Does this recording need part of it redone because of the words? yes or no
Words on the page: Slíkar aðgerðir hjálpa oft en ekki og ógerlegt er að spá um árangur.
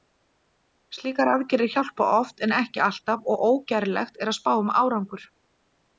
yes